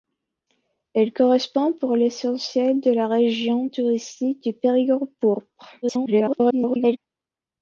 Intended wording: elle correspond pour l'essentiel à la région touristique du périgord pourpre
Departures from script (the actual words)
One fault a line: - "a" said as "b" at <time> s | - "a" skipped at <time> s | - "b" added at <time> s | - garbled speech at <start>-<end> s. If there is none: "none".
- garbled speech at 5.8-7.0 s